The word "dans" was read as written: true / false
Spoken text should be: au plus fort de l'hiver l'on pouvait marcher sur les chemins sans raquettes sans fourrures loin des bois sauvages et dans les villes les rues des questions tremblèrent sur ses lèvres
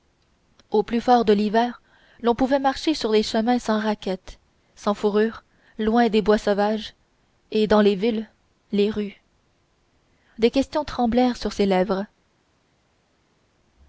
true